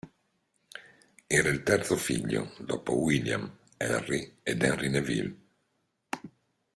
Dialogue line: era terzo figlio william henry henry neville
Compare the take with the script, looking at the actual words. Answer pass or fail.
fail